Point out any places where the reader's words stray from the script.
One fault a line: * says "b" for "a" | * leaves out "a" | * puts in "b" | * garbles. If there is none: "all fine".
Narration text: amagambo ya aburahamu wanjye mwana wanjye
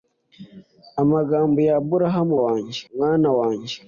all fine